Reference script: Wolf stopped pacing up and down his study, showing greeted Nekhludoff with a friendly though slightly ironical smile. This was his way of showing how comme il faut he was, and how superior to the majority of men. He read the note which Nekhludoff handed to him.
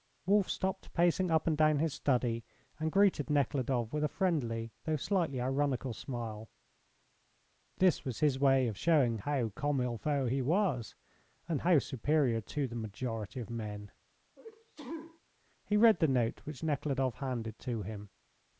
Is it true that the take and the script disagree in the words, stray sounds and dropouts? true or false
true